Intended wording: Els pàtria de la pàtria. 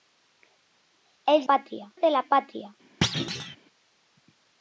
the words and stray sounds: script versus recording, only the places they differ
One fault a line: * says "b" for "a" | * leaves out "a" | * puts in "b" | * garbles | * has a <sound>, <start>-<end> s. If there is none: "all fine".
* has a thud, 3.0-3.6 s